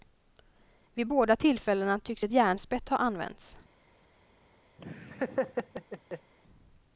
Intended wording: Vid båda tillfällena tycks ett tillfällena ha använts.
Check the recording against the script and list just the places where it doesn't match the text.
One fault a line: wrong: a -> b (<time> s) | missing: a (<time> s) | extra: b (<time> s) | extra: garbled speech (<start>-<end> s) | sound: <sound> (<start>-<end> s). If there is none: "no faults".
wrong: tillfällena -> järnspett (2.3 s)
sound: laugh (4.8-6.3 s)